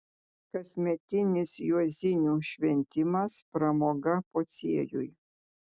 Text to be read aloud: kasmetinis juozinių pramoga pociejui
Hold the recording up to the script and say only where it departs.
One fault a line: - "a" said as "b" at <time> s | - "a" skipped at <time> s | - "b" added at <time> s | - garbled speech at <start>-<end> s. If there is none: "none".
- "šventimas" added at 2.5 s